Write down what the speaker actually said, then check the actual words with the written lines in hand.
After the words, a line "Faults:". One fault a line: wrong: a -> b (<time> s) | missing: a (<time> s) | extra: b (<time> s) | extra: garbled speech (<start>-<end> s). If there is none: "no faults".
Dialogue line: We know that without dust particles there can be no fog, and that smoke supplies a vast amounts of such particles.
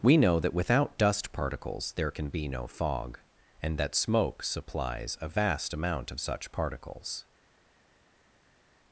We know that without dust particles there can be no fog, and that smoke supplies a vast amount of such particles.
Faults:
wrong: amounts -> amount (5.7 s)